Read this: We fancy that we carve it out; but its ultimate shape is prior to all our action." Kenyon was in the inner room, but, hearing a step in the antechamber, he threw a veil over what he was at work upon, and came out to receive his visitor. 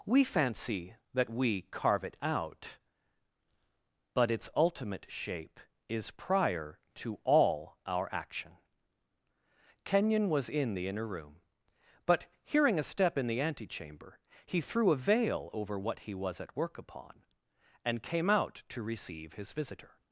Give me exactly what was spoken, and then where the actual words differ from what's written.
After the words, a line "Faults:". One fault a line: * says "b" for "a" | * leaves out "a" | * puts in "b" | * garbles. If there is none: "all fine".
We fancy that we carve it out; but its ultimate shape is prior to all our action." Kenyon was in the inner room, but, hearing a step in the antechamber, he threw a veil over what he was at work upon, and came out to receive his visitor.
Faults:
all fine